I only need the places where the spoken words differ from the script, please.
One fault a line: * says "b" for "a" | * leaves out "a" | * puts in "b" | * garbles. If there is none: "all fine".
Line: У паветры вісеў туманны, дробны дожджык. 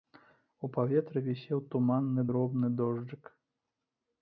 all fine